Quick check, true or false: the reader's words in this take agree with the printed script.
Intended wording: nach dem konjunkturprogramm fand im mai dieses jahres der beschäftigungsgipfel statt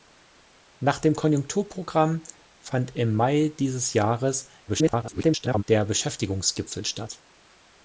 false